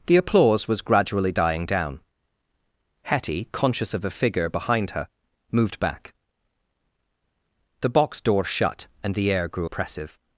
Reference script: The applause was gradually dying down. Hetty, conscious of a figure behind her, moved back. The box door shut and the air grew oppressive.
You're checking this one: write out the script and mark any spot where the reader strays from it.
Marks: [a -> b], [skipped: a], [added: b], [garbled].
The applause was gradually dying down. Hetty, conscious of a figure behind her, moved back. The box door shut and the air grew oppressive.